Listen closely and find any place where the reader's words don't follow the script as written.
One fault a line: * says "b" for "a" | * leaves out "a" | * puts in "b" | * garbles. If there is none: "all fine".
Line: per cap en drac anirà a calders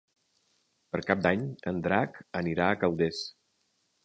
* puts in "d'any"